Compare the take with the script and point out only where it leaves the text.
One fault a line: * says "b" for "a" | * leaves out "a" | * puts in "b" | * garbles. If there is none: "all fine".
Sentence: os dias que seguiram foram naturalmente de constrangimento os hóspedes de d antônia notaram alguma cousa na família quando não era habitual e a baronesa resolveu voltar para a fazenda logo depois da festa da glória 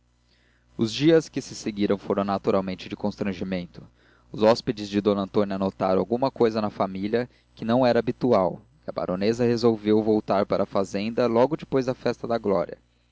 * puts in "se"
* says "que" for "quando"